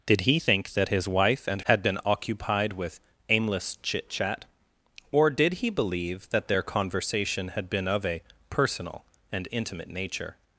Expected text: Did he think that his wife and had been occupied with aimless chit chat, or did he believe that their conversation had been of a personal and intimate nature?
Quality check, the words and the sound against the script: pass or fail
pass